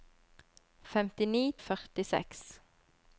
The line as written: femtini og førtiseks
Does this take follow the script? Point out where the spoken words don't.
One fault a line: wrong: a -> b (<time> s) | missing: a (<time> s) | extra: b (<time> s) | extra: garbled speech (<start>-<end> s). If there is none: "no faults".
no faults